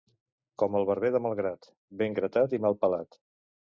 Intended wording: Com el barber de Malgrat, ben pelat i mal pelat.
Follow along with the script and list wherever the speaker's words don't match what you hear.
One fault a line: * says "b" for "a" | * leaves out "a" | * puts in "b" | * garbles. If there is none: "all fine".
* says "gratat" for "pelat"